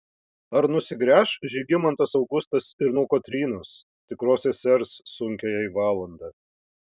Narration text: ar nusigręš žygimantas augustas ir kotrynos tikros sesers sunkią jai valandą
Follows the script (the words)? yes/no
no